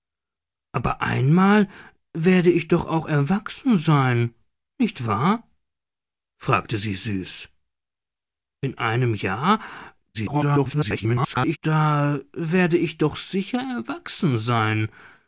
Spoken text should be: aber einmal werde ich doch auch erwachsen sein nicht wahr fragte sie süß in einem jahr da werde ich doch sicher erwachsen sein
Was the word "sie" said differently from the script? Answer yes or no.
no